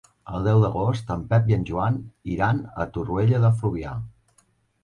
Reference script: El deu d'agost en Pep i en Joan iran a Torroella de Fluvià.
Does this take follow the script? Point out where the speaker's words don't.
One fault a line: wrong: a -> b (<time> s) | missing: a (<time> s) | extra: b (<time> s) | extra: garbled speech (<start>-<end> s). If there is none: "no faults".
no faults